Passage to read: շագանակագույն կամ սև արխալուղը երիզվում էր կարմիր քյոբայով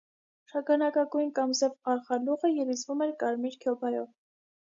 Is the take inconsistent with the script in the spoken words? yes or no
no